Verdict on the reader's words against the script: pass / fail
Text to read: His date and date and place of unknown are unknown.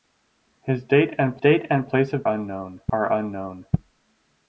pass